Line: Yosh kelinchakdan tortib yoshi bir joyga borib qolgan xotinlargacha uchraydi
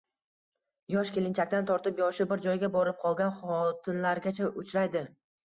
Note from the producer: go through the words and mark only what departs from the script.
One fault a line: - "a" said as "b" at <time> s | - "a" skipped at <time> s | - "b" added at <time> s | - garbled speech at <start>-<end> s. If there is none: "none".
none